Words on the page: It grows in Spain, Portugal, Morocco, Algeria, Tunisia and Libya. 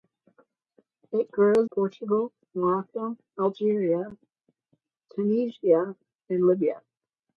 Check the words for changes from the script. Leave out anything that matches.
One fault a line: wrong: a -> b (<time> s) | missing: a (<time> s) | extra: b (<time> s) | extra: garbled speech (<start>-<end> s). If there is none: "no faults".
missing: in Spain (1.7 s)